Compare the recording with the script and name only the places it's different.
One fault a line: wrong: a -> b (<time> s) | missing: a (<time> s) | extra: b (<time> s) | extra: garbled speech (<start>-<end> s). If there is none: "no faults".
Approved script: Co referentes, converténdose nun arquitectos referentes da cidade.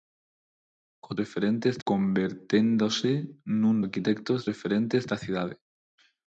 no faults